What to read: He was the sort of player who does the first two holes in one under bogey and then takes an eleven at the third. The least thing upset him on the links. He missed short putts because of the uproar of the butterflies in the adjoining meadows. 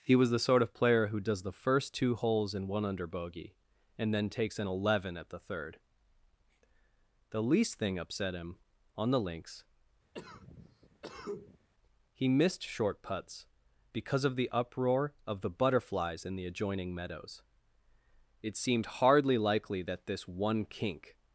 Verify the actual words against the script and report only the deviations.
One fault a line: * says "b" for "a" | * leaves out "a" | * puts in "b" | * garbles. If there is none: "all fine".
* puts in "It seemed hardly likely that this one kink"